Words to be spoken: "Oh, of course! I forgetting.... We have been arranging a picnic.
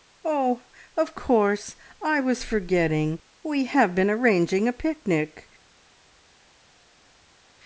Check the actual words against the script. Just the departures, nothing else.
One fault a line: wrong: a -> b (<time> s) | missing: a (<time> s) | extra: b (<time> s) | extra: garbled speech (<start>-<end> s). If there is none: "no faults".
extra: was (2.2 s)